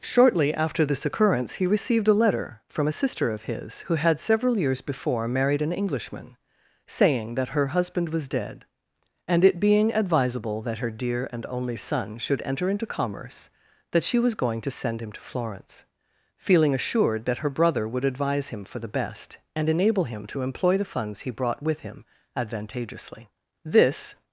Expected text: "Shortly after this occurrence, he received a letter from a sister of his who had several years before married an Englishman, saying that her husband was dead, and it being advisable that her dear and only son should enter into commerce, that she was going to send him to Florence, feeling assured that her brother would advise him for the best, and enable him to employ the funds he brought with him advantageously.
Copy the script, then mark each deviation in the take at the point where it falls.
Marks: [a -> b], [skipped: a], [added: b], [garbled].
"Shortly after this occurrence, he received a letter from a sister of his who had several years before married an Englishman, saying that her husband was dead, and it being advisable that her dear and only son should enter into commerce, that she was going to send him to Florence, feeling assured that her brother would advise him for the best, and enable him to employ the funds he brought with him advantageously. [added: This]